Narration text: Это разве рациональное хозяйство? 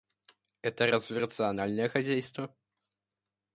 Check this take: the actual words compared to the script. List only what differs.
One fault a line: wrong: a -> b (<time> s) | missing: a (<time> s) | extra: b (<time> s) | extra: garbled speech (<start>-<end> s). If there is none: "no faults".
no faults